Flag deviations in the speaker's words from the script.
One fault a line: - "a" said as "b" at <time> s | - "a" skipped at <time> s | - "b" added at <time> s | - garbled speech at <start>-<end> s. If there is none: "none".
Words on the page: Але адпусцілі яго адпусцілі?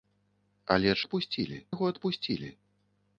none